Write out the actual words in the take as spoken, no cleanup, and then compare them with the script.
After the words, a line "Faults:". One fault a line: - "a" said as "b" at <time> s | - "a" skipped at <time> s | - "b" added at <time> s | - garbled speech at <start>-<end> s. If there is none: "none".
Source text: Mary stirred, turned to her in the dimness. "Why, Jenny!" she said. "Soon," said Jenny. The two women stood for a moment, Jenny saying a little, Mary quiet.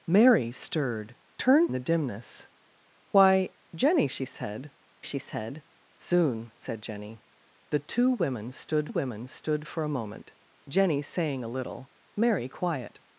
Mary stirred, turned the dimness. "Why, Jenny!" she said she said. "Soon," said Jenny. The two women stood women stood for a moment, Jenny saying a little, Mary quiet.
Faults:
- "to her in" skipped at 1.7 s
- "she said" added at 5.0 s
- "women stood" added at 8.9 s